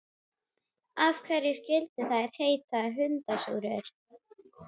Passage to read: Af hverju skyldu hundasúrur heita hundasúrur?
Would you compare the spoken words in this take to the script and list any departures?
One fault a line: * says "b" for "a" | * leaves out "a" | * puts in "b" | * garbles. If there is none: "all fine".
* says "þær" for "hundasúrur"